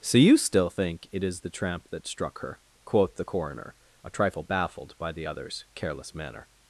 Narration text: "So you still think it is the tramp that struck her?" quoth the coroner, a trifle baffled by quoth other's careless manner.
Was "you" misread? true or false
false